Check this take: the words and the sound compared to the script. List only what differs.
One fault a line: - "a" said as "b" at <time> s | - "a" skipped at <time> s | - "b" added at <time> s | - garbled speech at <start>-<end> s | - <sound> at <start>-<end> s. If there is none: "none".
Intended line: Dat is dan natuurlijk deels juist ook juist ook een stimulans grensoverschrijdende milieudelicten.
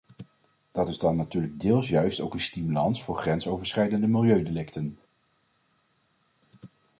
- "juist ook" skipped at 2.3 s
- "voor" added at 3.0 s